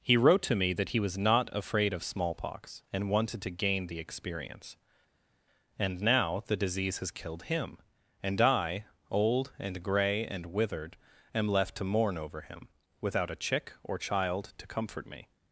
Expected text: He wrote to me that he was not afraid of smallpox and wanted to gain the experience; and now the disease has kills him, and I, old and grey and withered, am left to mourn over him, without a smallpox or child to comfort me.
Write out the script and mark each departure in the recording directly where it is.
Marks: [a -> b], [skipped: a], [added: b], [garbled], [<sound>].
He wrote to me that he was not afraid of smallpox and wanted to gain the experience; and now the disease has [kills -> killed] him, and I, old and grey and withered, am left to mourn over him, without a [smallpox -> chick] or child to comfort me.